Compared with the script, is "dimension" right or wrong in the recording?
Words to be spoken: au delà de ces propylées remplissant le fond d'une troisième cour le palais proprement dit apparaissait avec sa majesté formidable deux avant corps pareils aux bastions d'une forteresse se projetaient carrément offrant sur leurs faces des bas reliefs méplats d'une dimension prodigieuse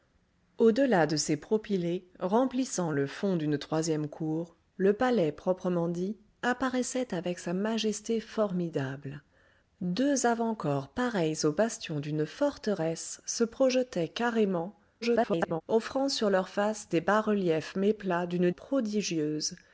wrong